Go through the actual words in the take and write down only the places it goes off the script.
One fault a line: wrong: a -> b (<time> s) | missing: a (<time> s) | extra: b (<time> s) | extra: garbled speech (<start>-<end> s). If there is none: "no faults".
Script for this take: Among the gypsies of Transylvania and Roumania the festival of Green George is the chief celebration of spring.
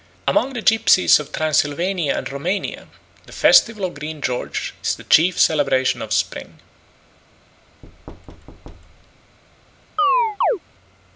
no faults